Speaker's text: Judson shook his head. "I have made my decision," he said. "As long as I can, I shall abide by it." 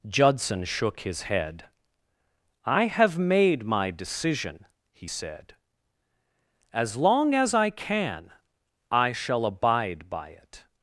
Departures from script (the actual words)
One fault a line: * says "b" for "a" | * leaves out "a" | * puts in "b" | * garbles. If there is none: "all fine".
all fine